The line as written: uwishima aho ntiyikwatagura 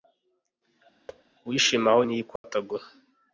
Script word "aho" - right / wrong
right